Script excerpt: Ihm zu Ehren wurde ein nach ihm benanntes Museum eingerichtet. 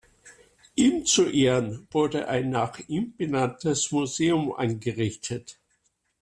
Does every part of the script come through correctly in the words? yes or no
yes